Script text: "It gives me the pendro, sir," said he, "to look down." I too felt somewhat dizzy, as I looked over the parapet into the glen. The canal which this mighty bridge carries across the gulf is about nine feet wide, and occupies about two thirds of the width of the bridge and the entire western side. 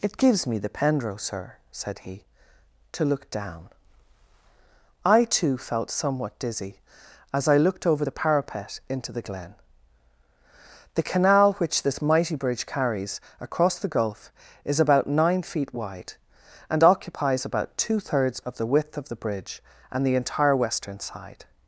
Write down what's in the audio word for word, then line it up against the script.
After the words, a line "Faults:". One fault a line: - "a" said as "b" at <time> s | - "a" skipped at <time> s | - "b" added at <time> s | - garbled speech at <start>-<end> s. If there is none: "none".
"It gives me the pendro, sir," said he, "to look down." I too felt somewhat dizzy, as I looked over the parapet into the glen. The canal which this mighty bridge carries across the gulf is about nine feet wide, and occupies about two thirds of the width of the bridge and the entire western side.
Faults:
none